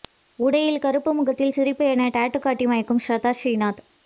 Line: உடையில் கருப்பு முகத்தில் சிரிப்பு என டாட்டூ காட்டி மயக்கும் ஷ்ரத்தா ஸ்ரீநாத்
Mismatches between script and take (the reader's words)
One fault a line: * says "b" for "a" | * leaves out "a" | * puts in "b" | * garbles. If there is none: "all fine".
all fine